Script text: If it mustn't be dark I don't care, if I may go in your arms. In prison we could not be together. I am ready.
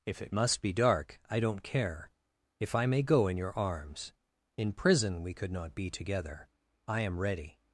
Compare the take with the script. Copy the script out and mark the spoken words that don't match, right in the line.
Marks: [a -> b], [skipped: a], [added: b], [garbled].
If it [mustn't -> must] be dark I don't care, if I may go in your arms. In prison we could not be together. I am ready.